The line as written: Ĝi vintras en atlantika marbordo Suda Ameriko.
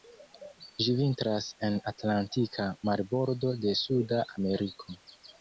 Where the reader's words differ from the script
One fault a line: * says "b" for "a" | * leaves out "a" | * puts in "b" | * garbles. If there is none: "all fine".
* puts in "de"